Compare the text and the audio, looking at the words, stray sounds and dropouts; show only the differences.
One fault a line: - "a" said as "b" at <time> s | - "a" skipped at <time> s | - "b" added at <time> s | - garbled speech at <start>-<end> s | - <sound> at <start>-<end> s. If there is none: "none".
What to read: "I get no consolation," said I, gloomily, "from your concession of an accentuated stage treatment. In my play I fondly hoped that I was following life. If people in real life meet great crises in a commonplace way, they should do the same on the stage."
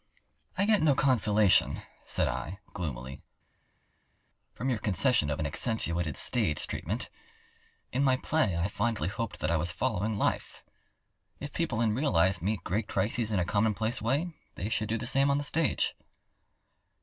none